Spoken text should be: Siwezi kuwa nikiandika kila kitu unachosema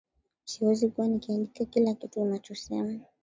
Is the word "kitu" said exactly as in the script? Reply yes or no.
yes